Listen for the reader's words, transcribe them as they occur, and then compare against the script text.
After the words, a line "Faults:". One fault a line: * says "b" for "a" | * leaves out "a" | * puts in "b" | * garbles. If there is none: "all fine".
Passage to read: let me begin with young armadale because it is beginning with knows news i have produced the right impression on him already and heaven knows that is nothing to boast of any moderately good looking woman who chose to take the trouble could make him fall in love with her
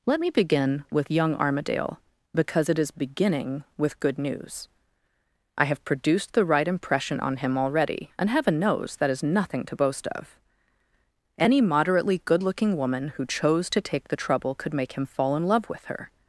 let me begin with young armadale because it is beginning with good news i have produced the right impression on him already and heaven knows that is nothing to boast of any moderately good looking woman who chose to take the trouble could make him fall in love with her
Faults:
* says "good" for "knows"